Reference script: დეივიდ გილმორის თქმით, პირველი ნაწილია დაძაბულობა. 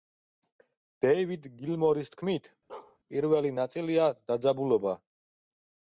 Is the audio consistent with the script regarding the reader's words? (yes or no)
yes